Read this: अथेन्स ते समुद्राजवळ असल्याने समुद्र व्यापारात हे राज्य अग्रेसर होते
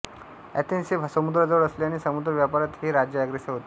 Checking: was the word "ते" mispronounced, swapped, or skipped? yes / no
yes